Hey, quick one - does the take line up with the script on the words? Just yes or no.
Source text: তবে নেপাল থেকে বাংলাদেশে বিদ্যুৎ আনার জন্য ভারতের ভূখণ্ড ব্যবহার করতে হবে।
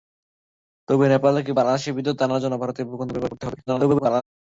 no